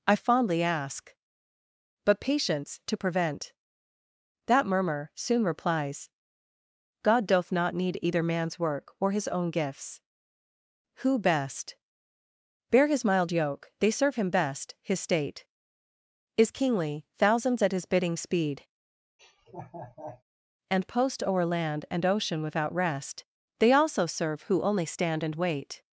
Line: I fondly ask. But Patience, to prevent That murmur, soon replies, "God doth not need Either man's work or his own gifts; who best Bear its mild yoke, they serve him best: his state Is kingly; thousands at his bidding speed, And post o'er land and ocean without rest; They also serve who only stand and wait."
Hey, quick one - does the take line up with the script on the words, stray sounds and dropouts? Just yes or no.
no